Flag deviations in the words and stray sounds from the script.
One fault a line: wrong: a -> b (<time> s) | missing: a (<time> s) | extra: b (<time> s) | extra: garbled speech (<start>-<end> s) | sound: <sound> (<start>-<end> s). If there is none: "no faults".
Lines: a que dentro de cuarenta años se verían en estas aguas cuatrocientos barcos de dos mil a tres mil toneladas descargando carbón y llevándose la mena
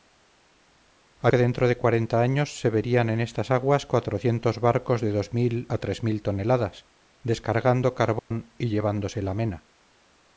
sound: dropout (8.2-8.3 s)